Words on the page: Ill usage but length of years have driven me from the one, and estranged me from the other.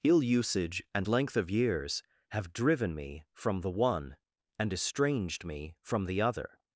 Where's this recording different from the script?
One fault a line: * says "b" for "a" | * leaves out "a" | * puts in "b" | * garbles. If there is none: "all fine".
* says "and" for "but"